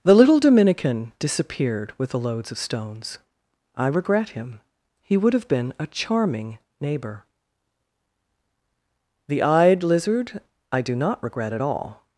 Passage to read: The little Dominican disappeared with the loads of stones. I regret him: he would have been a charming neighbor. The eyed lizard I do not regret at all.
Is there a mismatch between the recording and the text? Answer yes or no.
no